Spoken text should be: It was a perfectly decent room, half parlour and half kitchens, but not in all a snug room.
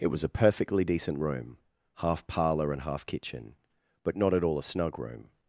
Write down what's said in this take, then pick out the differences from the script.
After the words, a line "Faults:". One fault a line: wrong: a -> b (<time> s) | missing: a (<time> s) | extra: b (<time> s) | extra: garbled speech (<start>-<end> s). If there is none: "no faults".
It was a perfectly decent room, half parlour and half kitchen, but not at all a snug room.
Faults:
wrong: kitchens -> kitchen (3.1 s)
wrong: in -> at (4.3 s)